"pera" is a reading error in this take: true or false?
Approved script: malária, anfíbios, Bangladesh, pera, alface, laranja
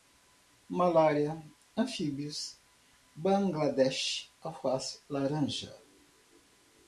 true